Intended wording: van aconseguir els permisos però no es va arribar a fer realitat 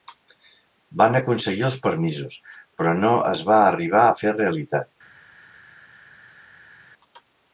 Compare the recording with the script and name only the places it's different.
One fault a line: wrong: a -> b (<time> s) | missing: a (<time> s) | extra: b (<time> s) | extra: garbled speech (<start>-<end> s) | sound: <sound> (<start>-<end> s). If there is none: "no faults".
no faults